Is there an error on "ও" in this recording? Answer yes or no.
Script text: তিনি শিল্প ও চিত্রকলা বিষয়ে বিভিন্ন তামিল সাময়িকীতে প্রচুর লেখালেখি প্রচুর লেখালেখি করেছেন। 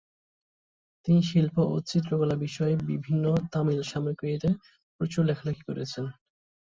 no